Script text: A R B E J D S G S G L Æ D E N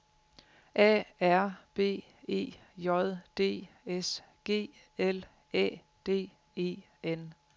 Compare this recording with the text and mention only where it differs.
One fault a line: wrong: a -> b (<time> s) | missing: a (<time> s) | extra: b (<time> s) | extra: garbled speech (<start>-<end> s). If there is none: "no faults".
missing: S G (4.7 s)